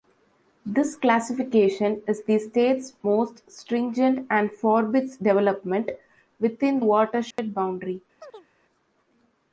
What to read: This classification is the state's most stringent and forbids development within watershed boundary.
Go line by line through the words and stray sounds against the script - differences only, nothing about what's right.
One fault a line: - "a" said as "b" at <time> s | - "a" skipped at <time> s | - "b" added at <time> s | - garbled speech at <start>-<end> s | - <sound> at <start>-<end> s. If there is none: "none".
- dropout at 7.3-7.4 s
- chirp at 8.2-8.5 s